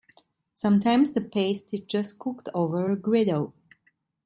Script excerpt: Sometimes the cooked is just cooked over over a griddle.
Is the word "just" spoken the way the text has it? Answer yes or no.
yes